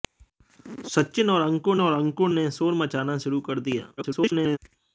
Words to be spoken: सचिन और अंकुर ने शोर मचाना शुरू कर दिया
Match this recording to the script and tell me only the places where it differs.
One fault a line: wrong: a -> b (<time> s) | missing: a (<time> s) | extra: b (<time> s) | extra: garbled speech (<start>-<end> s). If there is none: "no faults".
extra: और अंकुर (1.8 s)
extra: garbled speech (4.0-4.6 s)